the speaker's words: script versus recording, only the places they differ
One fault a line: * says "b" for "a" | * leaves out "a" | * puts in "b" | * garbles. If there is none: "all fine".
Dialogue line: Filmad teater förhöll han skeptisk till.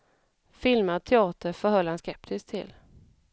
all fine